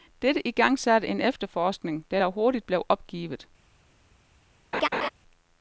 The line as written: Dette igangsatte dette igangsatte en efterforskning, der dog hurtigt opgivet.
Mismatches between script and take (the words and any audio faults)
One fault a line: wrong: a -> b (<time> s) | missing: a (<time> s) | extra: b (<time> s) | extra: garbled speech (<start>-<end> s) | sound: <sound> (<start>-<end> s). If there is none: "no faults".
missing: dette igangsatte (1.1 s)
extra: blev (2.7 s)
sound: laugh (4.7-5.1 s)